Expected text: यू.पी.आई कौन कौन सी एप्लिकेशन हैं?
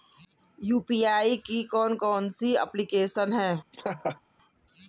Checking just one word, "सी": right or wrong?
right